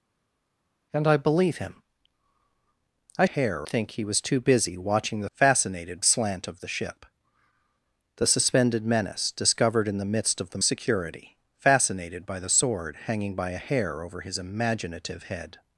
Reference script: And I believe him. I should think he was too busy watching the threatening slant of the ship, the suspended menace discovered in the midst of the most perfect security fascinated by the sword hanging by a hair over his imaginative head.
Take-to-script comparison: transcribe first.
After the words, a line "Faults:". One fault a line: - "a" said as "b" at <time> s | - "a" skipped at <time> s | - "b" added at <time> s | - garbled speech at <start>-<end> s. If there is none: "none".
And I believe him. I hair think he was too busy watching the fascinated slant of the ship, the suspended menace discovered in the midst of the security fascinated by the sword hanging by a hair over his imaginative head.
Faults:
- "should" said as "hair" at 3.2 s
- "threatening" said as "fascinated" at 5.3 s
- "most perfect" skipped at 10.6 s